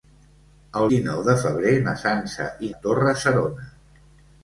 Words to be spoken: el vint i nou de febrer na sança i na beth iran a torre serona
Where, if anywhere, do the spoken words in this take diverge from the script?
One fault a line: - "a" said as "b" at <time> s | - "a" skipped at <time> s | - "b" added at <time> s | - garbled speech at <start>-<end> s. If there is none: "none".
- "vint" skipped at 0.9 s
- "na beth iran" skipped at 2.7 s